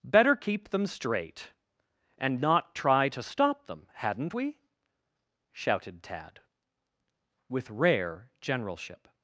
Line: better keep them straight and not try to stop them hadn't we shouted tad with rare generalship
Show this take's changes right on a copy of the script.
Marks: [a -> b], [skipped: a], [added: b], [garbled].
better keep them straight and not try to stop them hadn't we shouted tad with rare generalship